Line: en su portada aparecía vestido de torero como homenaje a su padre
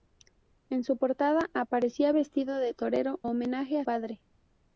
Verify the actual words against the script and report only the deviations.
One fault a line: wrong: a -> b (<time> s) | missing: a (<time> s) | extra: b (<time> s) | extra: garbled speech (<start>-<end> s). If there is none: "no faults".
missing: como (3.2 s)
missing: su (3.8 s)